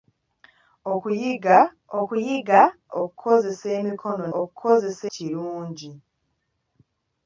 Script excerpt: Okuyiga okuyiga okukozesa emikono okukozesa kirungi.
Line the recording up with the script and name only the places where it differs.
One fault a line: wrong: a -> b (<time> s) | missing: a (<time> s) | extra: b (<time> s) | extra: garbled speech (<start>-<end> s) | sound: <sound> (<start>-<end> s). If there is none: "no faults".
no faults